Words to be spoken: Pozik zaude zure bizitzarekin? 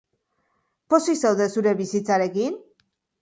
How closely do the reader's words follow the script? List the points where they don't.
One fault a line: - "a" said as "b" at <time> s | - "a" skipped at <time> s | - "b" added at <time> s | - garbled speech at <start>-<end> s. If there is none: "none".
none